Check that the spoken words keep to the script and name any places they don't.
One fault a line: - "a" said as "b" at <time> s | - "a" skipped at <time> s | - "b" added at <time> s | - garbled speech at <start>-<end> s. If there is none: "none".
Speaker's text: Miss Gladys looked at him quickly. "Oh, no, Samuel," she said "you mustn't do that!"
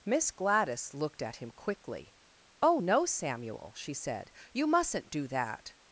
none